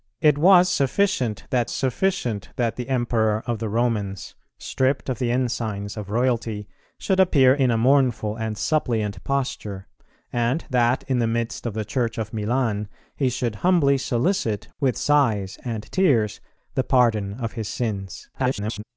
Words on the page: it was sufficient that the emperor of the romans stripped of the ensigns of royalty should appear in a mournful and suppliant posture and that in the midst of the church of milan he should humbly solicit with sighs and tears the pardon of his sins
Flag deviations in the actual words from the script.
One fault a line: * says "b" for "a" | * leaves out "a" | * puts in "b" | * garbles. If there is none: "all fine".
* puts in "sufficient that"
* garbles